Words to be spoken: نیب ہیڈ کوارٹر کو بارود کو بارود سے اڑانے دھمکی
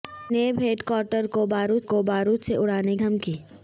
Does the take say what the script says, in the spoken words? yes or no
yes